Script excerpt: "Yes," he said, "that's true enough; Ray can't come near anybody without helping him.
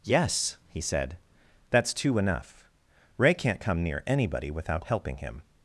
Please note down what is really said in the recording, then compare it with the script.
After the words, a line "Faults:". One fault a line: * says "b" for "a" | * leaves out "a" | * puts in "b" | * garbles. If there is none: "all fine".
"Yes," he said, "that's two enough; Ray can't come near anybody without helping him.
Faults:
* says "two" for "true"